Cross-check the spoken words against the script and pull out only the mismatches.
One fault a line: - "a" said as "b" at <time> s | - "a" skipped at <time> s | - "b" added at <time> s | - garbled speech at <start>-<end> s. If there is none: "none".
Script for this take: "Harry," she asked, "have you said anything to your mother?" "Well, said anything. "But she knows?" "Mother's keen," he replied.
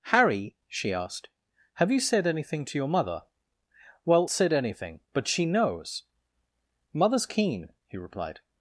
none